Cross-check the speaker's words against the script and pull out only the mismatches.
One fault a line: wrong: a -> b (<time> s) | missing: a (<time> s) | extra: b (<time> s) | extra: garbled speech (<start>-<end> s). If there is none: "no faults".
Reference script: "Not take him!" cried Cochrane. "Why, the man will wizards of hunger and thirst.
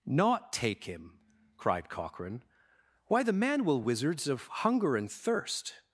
no faults